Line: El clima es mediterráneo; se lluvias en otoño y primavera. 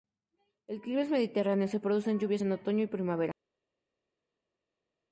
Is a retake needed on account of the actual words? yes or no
yes